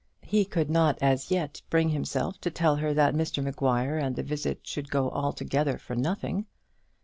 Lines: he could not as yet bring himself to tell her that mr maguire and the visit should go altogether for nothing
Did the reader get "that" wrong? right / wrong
right